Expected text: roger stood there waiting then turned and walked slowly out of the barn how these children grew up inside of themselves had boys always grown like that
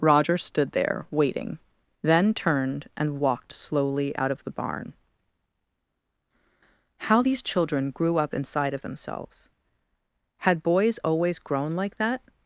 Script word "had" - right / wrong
right